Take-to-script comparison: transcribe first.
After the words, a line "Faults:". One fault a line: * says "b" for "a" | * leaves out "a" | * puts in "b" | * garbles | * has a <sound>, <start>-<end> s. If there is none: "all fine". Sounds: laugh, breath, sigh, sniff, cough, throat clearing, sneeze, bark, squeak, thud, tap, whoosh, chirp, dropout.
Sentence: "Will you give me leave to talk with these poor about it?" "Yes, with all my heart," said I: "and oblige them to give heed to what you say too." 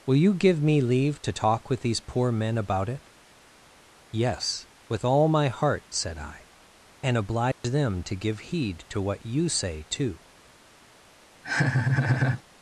"Will you give me leave to talk with these poor men about it?" "Yes, with all my heart," said I: "and oblige them to give heed to what you say too."
Faults:
* puts in "men"
* has a dropout, 7.5-7.6 s
* has a laugh, 11.4-12.4 s